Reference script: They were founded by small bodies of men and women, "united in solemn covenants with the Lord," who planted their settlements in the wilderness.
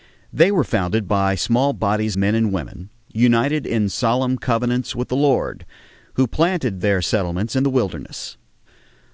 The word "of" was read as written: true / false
false